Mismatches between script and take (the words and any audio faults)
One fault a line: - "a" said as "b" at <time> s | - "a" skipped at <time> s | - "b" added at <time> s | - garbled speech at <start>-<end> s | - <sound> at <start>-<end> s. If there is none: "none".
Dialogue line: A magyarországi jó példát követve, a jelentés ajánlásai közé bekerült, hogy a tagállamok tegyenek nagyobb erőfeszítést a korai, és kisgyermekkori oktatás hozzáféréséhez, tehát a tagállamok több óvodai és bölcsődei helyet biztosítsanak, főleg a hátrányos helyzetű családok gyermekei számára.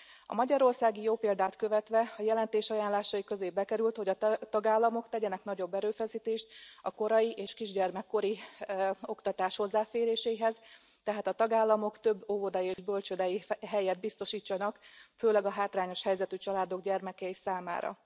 - dropout at 12.7-12.8 s